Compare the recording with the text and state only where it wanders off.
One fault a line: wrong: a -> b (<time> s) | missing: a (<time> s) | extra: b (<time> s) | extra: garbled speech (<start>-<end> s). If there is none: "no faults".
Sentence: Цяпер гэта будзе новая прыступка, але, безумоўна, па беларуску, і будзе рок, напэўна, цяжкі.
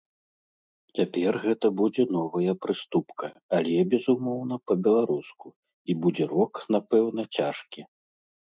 no faults